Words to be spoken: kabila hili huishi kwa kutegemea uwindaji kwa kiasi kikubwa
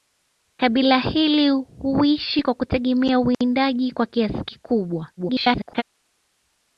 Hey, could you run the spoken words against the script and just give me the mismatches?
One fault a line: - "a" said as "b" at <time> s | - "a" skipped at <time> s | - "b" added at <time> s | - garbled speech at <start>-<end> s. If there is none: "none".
- garbled speech at 5.2-5.8 s